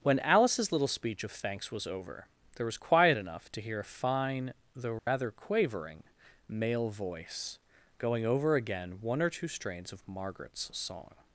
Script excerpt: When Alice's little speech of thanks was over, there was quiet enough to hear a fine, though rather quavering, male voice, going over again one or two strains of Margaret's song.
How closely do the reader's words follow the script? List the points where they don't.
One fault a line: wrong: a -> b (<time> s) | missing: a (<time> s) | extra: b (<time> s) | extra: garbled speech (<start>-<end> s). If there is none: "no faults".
no faults